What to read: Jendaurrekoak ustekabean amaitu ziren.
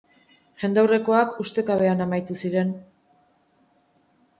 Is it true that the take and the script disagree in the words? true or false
false